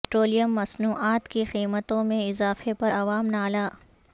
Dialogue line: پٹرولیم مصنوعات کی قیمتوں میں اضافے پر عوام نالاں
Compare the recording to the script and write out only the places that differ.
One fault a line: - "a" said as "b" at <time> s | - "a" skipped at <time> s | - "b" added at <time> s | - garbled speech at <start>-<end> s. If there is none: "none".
none